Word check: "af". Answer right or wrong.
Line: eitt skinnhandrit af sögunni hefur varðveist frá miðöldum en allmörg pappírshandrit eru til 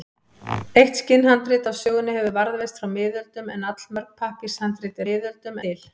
right